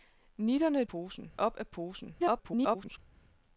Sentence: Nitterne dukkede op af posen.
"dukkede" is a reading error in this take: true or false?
true